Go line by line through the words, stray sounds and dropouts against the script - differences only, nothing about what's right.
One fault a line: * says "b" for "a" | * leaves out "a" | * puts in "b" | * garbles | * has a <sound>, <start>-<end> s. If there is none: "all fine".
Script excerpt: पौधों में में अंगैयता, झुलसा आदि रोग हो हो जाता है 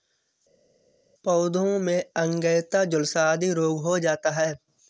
* leaves out "में"
* leaves out "हो"